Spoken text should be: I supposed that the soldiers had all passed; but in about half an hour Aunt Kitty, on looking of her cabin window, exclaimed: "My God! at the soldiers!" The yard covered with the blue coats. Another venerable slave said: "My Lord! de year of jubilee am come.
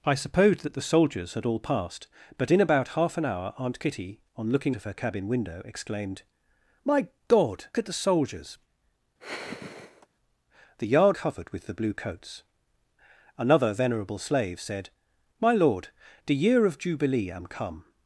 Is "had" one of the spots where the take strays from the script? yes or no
no